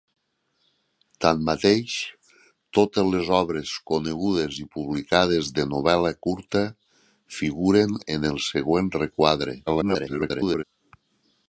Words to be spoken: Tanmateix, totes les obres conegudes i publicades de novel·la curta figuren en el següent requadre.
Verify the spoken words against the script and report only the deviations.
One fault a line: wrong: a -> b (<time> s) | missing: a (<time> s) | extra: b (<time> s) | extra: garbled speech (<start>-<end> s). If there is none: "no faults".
extra: garbled speech (9.7-10.6 s)